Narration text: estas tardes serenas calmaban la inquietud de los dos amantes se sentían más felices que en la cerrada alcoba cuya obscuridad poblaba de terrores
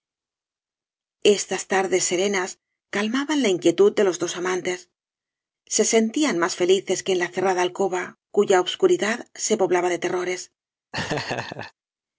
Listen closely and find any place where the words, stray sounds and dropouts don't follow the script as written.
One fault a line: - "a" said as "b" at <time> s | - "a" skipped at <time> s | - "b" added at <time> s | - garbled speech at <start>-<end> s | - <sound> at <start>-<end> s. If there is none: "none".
- "se" added at 9.3 s
- laugh at 10.9-11.7 s